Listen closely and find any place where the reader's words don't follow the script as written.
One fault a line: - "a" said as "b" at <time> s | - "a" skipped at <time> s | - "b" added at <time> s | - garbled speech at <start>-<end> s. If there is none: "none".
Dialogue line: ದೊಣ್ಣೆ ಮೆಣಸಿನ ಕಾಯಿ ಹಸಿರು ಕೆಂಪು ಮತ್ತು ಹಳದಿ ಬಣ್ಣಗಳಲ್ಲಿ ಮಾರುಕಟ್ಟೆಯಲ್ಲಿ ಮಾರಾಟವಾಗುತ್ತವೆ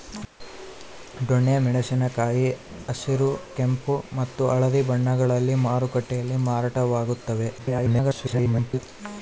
- garbled speech at 7.6-8.8 s